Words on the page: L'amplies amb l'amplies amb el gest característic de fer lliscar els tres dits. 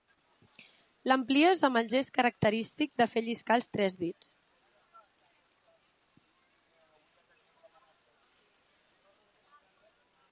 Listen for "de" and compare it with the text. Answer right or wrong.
right